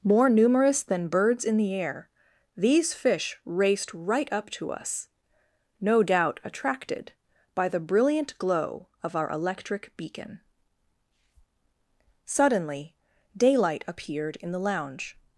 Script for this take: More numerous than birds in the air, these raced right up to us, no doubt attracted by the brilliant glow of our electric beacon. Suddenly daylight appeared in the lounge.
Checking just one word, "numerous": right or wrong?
right